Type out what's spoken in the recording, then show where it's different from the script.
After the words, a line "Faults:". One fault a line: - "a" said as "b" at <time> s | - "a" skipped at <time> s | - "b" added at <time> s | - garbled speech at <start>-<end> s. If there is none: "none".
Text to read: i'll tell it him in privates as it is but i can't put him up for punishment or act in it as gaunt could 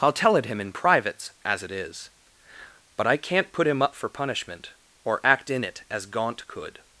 i'll tell it him in privates as it is but i can't put him up for punishment or act in it as gaunt could
Faults:
none